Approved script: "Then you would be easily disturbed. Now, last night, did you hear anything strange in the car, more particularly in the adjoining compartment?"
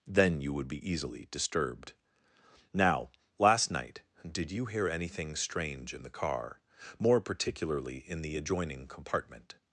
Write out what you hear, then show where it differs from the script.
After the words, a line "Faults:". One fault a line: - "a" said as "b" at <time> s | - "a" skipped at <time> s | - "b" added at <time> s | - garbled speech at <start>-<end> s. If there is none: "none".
"Then you would be easily disturbed. Now, last night, did you hear anything strange in the car, more particularly in the adjoining compartment?"
Faults:
none